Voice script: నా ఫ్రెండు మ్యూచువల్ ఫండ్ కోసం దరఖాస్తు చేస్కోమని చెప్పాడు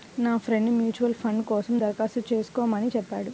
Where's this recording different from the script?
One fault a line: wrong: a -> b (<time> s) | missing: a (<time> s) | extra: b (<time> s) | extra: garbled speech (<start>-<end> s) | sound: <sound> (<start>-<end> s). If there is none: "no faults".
no faults